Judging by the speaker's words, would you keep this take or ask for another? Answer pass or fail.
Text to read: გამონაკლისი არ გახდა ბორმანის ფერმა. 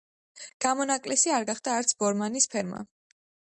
fail